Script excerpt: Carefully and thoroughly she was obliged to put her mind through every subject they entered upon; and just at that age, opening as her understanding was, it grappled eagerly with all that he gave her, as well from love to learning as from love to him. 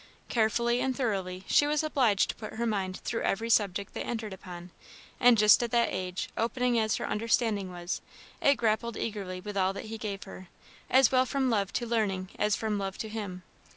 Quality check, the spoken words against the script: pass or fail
pass